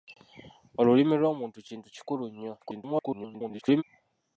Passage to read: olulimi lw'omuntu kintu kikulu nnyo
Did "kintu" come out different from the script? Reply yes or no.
no